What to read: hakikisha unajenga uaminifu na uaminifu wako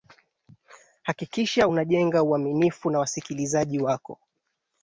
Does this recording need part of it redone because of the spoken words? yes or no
yes